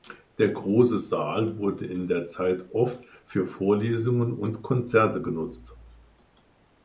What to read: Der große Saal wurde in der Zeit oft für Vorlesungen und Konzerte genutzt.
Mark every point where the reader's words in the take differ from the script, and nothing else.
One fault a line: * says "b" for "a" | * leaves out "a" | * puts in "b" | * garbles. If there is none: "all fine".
all fine